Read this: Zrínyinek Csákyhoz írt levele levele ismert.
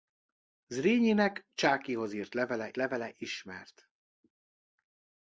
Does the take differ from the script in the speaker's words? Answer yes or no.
no